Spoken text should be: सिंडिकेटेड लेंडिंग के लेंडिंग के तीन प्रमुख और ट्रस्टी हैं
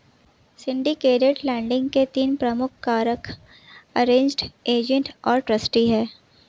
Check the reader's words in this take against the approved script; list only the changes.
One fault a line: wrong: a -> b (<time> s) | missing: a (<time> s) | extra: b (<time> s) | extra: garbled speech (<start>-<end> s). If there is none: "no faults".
wrong: लेंडिंग के तीन प्रमुख -> तीन प्रमुख कारक अरेंज्ड एजेंट (2.1 s)